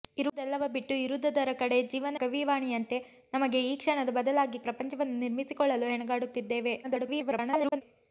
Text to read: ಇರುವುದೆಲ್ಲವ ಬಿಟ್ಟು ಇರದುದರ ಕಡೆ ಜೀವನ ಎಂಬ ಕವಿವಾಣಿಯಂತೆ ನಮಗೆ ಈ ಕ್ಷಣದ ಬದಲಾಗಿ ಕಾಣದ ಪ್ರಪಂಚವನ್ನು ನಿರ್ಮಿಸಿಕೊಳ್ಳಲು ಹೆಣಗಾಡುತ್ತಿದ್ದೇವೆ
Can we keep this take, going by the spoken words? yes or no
no